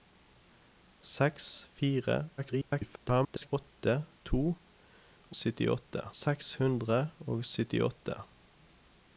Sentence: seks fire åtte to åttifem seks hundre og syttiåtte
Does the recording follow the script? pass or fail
fail